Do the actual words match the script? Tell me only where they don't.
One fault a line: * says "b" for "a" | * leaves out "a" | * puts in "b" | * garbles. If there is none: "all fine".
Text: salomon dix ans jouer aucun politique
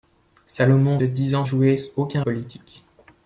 all fine